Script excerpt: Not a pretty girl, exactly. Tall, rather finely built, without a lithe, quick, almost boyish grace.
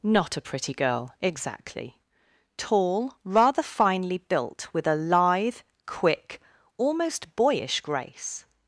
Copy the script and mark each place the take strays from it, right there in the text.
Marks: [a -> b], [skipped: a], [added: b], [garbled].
Not a pretty girl, exactly. Tall, rather finely built, [without -> with] a lithe, quick, almost boyish grace.